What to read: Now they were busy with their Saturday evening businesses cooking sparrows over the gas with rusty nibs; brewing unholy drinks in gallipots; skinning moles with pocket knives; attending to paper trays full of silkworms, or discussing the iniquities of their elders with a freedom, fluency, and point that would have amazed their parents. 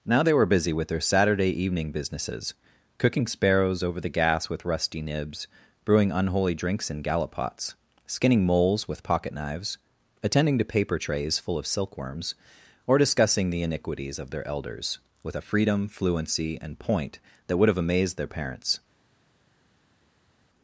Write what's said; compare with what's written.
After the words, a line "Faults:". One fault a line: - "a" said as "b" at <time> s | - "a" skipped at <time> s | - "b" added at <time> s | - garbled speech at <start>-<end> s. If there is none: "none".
Now they were busy with their Saturday evening businesses cooking sparrows over the gas with rusty nibs; brewing unholy drinks in gallipots; skinning moles with pocket knives; attending to paper trays full of silkworms, or discussing the iniquities of their elders with a freedom, fluency, and point that would have amazed their parents.
Faults:
none